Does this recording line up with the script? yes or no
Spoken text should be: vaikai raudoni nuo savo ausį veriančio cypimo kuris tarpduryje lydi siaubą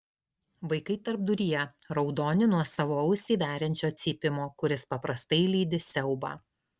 no